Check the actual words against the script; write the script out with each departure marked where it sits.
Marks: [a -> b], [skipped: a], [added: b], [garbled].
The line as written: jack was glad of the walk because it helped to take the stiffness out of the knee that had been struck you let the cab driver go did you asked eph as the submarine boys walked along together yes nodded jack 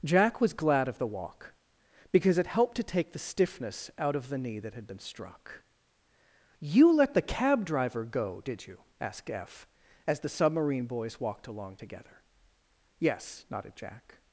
jack was glad of the walk because it helped to take the stiffness out of the knee that had been struck you let the cab driver go did you asked eph as the submarine boys walked along together yes nodded jack